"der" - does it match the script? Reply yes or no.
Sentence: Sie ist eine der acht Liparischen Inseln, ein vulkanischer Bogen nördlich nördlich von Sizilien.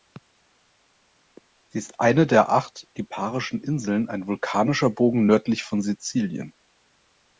yes